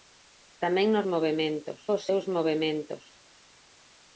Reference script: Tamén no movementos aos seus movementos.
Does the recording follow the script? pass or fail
pass